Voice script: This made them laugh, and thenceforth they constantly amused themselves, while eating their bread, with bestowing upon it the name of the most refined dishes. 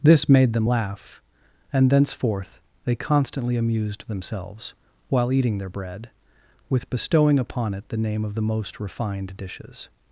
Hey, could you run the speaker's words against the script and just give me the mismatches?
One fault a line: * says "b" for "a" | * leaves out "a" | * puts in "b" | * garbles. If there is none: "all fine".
all fine